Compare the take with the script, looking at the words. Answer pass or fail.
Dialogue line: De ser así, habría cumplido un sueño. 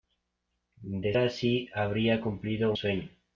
fail